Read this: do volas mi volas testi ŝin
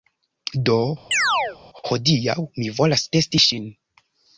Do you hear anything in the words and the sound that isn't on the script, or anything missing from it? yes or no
yes